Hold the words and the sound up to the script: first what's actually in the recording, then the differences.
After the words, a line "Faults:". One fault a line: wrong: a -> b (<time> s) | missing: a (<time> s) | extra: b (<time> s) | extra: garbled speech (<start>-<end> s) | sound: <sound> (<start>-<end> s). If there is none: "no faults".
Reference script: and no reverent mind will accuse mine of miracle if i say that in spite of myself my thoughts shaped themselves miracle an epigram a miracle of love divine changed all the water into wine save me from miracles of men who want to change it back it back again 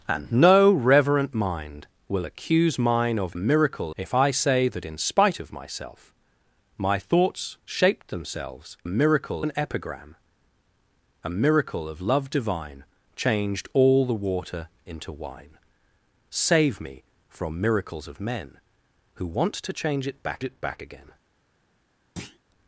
and no reverent mind will accuse mine of miracle if i say that in spite of myself my thoughts shaped themselves miracle an epigram a miracle of love divine changed all the water into wine save me from miracles of men who want to change it back it back again
Faults:
sound: thud (22.2-22.4 s)